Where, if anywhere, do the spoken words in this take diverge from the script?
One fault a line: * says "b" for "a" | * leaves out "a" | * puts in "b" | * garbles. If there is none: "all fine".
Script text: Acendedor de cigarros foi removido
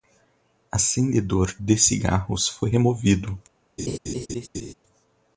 all fine